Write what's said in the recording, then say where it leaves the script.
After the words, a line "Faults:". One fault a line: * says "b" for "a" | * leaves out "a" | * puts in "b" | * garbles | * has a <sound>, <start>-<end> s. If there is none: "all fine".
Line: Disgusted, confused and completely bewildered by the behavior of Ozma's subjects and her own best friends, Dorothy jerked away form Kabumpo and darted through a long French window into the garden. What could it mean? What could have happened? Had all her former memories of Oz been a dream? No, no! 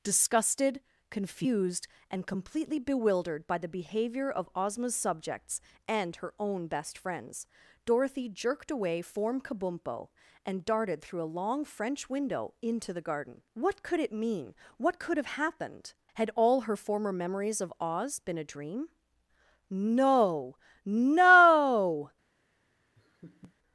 Disgusted, confused and completely bewildered by the behavior of Ozma's subjects and her own best friends, Dorothy jerked away form Kabumpo and darted through a long French window into the garden. What could it mean? What could have happened? Had all her former memories of Oz been a dream? No, no!
Faults:
* has a laugh, 23.0-23.6 s